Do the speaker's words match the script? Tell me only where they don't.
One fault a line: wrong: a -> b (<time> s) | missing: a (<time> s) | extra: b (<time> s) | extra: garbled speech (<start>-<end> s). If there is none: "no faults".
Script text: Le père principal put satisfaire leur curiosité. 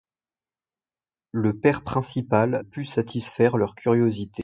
no faults